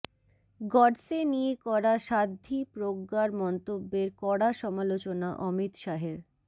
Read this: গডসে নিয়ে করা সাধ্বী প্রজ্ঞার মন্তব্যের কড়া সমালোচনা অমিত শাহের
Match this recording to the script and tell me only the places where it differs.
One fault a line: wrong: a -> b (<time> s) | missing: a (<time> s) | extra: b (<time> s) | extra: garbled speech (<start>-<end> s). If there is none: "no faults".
no faults